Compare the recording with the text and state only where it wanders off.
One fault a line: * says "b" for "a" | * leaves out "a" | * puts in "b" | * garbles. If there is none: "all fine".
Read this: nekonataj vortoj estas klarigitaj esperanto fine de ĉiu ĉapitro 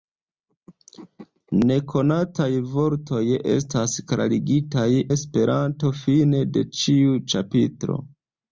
all fine